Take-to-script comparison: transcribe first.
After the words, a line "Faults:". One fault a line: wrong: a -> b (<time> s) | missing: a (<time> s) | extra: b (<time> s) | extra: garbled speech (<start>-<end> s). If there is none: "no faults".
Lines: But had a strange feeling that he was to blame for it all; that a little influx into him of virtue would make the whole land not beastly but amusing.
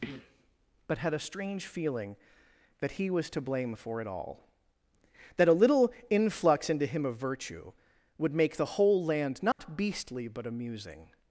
But had a strange feeling that he was to blame for it all; that a little influx into him of virtue would make the whole land not beastly but amusing.
Faults:
no faults